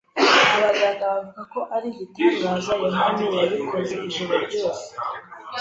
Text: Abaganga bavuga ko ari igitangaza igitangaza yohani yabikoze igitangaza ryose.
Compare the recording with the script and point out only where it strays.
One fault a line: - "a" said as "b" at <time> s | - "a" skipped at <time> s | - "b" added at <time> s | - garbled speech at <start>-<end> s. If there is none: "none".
- "igitangaza" skipped at 2.7 s
- "igitangaza" said as "ijoro" at 4.1 s